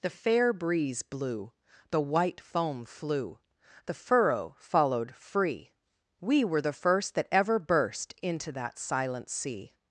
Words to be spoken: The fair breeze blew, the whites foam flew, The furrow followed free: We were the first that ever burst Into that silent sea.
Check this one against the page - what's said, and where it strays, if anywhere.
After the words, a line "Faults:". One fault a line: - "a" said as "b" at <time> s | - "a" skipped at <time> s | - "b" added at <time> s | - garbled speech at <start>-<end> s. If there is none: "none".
The fair breeze blew, the white foam flew, The furrow followed free: We were the first that ever burst Into that silent sea.
Faults:
- "whites" said as "white" at 2.0 s